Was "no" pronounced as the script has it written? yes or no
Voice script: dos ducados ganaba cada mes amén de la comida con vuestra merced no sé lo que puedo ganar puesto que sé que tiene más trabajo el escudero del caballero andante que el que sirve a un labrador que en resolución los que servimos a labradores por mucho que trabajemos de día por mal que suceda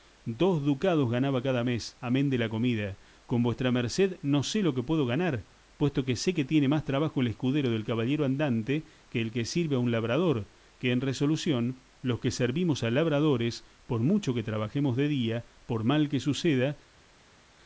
yes